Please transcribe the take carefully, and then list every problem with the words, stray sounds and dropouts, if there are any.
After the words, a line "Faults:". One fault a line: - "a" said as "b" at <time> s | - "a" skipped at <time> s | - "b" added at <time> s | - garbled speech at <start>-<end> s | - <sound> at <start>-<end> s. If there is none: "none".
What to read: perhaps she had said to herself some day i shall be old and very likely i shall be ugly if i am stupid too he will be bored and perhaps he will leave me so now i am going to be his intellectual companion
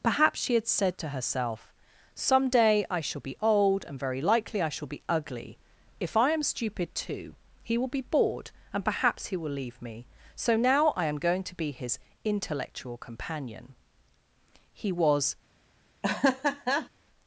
perhaps she had said to herself some day i shall be old and very likely i shall be ugly if i am stupid too he will be bored and perhaps he will leave me so now i am going to be his intellectual companion he was
Faults:
- "he was" added at 14.7 s
- laugh at 16.0-16.9 s